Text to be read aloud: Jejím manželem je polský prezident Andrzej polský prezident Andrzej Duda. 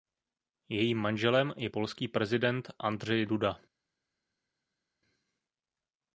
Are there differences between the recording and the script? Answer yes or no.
yes